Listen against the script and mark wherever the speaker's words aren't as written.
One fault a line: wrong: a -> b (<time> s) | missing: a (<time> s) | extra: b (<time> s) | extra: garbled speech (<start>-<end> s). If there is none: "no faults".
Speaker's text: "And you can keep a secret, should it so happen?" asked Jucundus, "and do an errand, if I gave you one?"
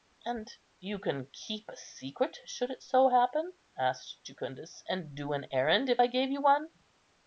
no faults